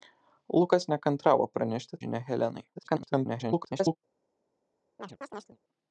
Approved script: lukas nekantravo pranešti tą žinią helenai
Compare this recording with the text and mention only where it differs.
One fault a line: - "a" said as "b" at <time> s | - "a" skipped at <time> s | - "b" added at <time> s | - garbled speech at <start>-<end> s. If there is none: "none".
- "tą" skipped at 2.0 s
- garbled speech at 2.7-4.0 s